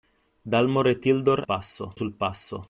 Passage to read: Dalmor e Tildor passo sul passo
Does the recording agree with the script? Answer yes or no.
yes